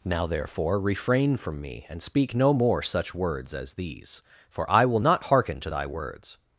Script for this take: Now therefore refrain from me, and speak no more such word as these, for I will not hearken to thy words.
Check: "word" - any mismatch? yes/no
yes